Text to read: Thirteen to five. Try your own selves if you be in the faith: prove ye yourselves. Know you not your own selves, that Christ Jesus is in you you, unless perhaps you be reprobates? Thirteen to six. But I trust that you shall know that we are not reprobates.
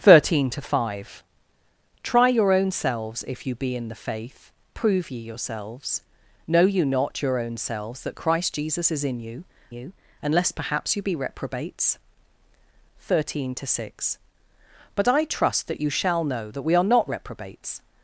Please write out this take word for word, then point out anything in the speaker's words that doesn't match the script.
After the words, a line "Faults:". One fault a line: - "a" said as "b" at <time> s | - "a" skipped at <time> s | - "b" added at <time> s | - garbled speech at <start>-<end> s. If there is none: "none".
Thirteen to five. Try your own selves if you be in the faith: prove ye yourselves. Know you not your own selves, that Christ Jesus is in you you, unless perhaps you be reprobates? Thirteen to six. But I trust that you shall know that we are not reprobates.
Faults:
none